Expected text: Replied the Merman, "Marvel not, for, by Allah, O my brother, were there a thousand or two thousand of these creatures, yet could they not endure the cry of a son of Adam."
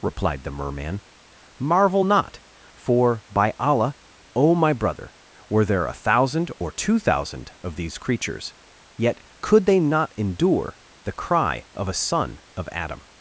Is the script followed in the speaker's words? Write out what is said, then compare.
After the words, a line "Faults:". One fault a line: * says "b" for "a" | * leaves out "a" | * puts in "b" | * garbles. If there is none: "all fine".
Replied the Merman, "Marvel not, for, by Allah, O my brother, were there a thousand or two thousand of these creatures, yet could they not endure the cry of a son of Adam."
Faults:
all fine